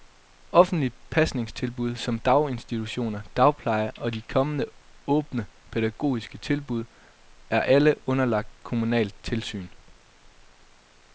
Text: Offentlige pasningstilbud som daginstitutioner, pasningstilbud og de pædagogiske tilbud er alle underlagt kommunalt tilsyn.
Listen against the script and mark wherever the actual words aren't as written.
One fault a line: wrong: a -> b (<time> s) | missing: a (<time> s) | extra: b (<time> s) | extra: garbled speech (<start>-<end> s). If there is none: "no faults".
wrong: pasningstilbud -> dagpleje (3.4 s)
extra: kommende åbne (4.2 s)